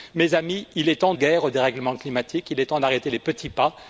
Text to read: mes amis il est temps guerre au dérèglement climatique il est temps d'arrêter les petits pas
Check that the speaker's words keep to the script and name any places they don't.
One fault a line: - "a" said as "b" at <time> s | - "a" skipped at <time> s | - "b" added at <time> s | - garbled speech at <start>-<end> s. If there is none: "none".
none